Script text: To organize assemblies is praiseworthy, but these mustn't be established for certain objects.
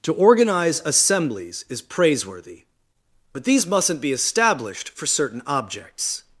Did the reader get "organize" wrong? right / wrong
right